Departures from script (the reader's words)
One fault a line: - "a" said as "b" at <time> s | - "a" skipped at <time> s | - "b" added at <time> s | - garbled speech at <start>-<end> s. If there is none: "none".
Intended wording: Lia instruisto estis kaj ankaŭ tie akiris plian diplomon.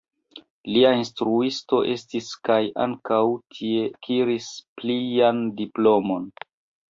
none